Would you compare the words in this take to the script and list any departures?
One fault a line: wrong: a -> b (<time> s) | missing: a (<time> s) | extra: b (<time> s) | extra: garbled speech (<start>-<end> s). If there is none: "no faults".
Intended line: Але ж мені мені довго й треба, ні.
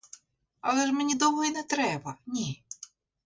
missing: мені (1.1 s)
extra: не (1.5 s)